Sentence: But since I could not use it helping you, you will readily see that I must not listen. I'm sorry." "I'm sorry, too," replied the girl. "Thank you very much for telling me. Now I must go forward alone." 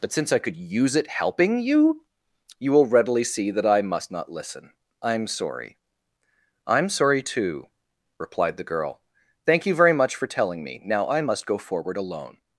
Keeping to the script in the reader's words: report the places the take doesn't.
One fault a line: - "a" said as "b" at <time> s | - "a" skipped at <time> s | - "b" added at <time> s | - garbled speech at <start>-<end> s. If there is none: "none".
- "not" skipped at 0.6 s